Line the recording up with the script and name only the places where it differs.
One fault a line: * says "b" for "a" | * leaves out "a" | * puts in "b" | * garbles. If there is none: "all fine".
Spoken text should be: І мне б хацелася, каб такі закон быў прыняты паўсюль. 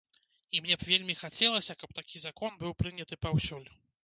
* puts in "вельмі"